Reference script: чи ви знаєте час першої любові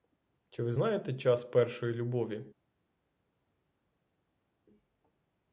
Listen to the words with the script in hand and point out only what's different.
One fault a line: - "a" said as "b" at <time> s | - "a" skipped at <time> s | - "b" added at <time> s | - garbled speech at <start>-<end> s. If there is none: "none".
none